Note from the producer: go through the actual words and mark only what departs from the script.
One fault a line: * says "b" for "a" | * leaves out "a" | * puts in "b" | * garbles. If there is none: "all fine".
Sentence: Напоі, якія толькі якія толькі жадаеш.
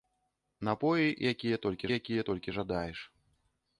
all fine